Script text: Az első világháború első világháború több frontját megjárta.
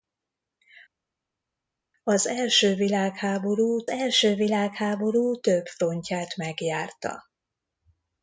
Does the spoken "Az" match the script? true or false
true